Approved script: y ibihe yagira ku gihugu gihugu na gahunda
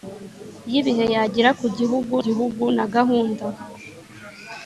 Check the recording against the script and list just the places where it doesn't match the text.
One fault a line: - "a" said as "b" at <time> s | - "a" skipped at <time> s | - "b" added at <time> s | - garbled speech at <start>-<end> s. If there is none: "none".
none